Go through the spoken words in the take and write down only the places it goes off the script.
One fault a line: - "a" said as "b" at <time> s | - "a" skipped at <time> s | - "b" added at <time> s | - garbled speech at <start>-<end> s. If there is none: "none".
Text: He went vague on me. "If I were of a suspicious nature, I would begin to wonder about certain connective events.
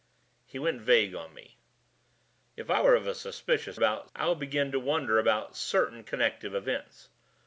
- "nature" said as "about" at 3.7 s